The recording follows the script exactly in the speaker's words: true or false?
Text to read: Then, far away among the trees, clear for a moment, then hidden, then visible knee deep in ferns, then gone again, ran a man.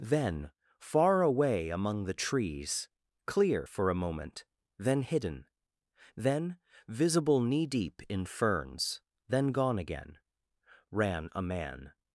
true